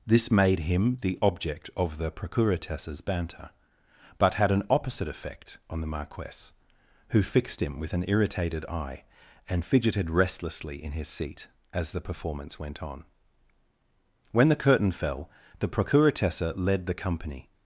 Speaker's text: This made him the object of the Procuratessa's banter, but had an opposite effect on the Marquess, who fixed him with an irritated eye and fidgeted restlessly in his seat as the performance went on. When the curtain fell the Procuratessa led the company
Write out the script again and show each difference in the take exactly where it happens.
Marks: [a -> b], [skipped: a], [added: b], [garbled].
This made him the object of the Procuratessa's banter, but had an opposite effect on the Marquess, who fixed him with an irritated eye and fidgeted restlessly in his seat as the performance went on. When the curtain fell the Procuratessa led the company